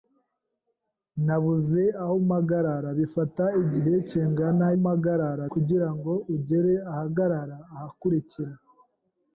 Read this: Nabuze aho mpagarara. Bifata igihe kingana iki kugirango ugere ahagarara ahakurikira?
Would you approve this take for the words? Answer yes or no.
no